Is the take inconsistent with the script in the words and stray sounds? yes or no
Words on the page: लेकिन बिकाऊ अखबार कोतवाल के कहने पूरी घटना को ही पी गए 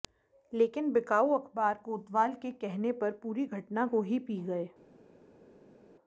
yes